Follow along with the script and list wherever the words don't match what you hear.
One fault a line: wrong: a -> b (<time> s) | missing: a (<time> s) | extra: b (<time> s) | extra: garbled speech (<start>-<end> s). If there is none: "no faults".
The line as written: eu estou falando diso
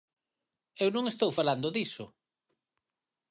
extra: non (0.9 s)